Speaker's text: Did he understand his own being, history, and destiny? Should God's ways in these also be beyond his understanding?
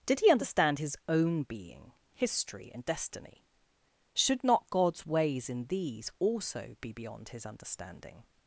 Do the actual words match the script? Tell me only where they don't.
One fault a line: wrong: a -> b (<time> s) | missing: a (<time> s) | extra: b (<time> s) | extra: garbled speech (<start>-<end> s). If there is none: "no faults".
extra: not (4.4 s)